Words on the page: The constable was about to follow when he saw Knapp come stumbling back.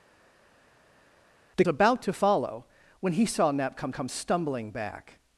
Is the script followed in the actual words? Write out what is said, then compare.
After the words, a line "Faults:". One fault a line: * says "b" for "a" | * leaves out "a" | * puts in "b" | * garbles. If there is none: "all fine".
The about to follow when he saw Knapp come come stumbling back.
Faults:
* leaves out "constable was"
* puts in "come"